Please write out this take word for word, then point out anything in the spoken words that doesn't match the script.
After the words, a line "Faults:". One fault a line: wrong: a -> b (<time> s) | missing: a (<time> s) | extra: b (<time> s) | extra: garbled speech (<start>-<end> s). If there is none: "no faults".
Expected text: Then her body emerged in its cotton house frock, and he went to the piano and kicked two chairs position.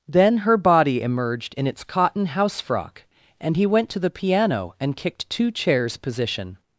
Then her body emerged in its cotton house frock, and he went to the piano and kicked two chairs position.
Faults:
no faults